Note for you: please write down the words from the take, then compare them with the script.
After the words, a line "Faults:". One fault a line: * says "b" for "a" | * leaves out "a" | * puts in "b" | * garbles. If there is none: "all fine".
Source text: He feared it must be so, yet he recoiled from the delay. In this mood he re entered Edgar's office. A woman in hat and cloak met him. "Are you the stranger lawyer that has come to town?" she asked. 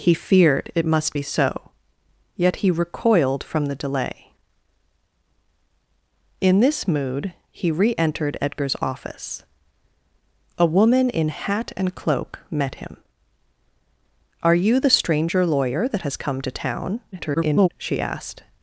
He feared it must be so, yet he recoiled from the delay. In this mood he re entered Edgar's office. A woman in hat and cloak met him. "Are you the stranger lawyer that has come to town?" [garbled] she asked.
Faults:
* garbles